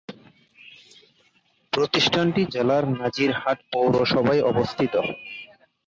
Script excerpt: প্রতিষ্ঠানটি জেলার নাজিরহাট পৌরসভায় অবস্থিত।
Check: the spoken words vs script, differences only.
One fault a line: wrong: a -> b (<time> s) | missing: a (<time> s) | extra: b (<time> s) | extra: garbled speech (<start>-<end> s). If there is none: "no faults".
no faults